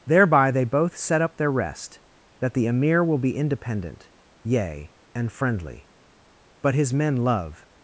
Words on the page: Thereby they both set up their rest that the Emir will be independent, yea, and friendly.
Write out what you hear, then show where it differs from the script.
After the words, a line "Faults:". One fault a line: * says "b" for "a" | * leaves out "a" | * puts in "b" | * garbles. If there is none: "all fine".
Thereby they both set up their rest that the Emir will be independent, yea, and friendly. But his men love
Faults:
* puts in "But his men love"